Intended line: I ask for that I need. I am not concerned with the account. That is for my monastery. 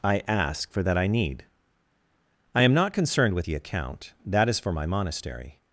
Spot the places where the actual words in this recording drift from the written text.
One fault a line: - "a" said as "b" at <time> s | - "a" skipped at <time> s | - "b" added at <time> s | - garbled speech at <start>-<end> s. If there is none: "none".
none